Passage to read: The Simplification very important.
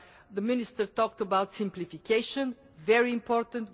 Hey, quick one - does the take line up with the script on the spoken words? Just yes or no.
no